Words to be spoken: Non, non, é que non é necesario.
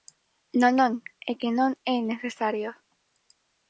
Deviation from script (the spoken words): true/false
false